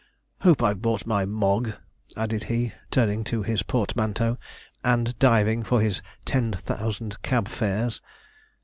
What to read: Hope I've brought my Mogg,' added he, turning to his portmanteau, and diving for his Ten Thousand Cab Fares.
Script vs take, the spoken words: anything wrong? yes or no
no